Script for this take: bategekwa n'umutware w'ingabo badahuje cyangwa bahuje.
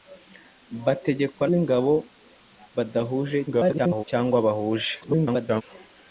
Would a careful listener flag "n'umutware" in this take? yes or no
yes